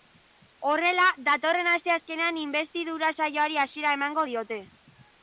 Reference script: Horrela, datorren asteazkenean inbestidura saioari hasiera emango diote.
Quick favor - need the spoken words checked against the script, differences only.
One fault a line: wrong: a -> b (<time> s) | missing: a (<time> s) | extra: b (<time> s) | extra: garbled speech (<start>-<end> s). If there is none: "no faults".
no faults